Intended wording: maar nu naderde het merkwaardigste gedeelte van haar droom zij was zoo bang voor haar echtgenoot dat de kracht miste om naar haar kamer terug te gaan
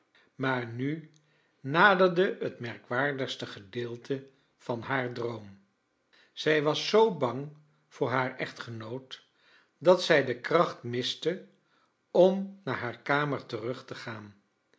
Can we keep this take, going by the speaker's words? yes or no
no